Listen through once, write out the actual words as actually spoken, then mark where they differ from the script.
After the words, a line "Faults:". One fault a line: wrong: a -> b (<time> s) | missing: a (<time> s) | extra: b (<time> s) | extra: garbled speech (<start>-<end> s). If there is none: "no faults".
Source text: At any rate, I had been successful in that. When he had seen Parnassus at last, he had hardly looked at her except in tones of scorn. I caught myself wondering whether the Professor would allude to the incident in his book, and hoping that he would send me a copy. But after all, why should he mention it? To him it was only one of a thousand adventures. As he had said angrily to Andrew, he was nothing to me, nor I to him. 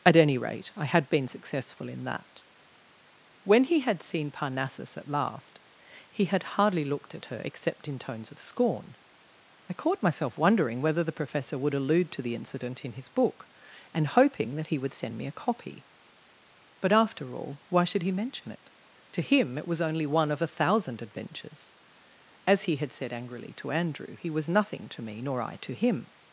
At any rate, I had been successful in that. When he had seen Parnassus at last, he had hardly looked at her except in tones of scorn. I caught myself wondering whether the Professor would allude to the incident in his book, and hoping that he would send me a copy. But after all, why should he mention it? To him it was only one of a thousand adventures. As he had said angrily to Andrew, he was nothing to me, nor I to him.
Faults:
no faults